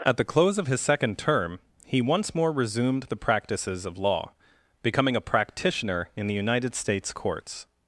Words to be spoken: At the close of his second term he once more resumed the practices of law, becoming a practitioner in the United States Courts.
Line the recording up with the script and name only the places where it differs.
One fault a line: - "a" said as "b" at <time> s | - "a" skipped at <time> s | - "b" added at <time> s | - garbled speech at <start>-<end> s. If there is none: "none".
none